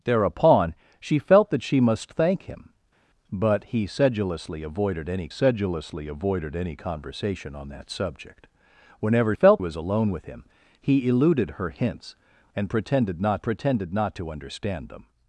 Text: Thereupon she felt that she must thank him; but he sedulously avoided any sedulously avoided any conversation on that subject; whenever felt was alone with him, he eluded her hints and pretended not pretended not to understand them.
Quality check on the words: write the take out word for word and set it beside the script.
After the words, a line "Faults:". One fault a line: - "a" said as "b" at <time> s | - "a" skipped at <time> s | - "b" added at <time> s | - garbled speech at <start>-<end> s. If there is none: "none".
Thereupon she felt that she must thank him; but he sedulously avoided any sedulously avoided any conversation on that subject; whenever felt was alone with him, he eluded her hints and pretended not pretended not to understand them.
Faults:
none